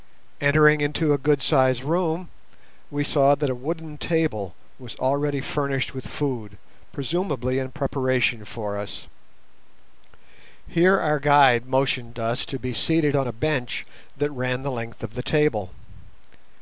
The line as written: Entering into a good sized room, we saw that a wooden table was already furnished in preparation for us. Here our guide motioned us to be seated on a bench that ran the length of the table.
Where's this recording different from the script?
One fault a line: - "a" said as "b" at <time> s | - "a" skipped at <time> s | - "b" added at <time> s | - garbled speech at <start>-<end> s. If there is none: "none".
- "with food presumably" added at 5.9 s